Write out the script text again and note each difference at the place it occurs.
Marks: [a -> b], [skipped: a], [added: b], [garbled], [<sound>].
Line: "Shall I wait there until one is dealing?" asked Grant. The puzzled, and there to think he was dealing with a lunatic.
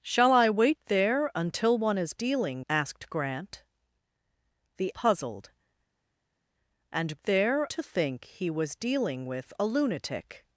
"Shall I wait there until one is dealing?" asked Grant. The puzzled, and there to think he was dealing with a lunatic.